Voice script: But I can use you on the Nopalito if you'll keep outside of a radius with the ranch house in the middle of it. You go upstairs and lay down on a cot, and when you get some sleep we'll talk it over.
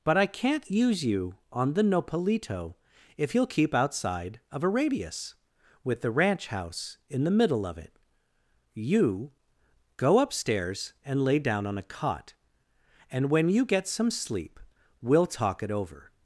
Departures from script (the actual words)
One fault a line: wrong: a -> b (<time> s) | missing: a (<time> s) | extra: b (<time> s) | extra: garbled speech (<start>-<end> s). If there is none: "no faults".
wrong: can -> can't (0.2 s)